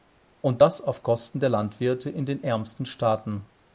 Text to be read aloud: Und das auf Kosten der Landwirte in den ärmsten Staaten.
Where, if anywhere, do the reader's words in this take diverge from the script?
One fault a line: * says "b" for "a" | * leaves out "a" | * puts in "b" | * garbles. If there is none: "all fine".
all fine